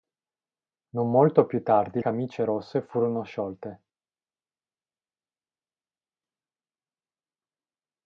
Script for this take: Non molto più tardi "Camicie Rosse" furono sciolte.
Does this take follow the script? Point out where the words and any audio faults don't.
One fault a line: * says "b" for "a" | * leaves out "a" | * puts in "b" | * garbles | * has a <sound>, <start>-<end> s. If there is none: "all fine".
all fine